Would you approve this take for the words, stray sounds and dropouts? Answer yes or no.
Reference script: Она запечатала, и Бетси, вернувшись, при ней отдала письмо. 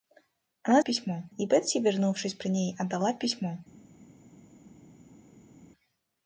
no